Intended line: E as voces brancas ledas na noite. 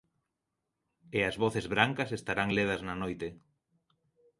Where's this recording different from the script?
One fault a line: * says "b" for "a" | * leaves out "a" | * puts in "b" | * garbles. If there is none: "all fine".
* puts in "estarán"